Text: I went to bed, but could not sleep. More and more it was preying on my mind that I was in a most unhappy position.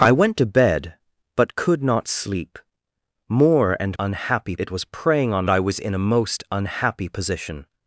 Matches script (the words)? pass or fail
fail